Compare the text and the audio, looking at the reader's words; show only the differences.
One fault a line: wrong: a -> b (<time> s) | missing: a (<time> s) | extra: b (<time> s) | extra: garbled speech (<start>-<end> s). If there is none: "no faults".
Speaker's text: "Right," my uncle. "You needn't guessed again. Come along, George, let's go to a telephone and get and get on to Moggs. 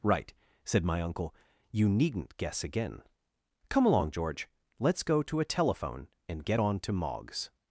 extra: said (0.7 s)
wrong: guessed -> guess (2.4 s)
missing: and get (6.6 s)